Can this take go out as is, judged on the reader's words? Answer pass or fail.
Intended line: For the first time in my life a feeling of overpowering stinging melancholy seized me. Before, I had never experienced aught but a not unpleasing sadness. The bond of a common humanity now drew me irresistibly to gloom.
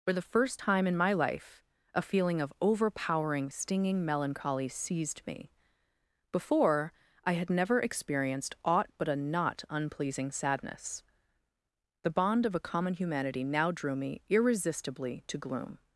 pass